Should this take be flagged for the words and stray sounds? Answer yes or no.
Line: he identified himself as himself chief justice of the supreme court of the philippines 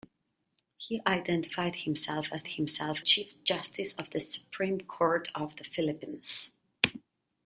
no